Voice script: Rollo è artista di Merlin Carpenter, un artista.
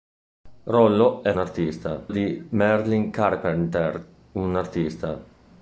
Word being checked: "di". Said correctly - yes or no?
yes